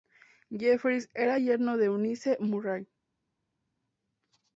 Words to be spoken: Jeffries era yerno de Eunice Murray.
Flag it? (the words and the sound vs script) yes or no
no